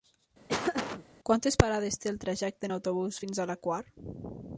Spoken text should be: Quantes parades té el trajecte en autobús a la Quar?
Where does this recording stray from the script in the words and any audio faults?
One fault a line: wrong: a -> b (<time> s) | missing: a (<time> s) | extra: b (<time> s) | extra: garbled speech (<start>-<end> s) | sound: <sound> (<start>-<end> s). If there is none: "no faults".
sound: laugh (0.5-1.1 s)
extra: fins (3.2 s)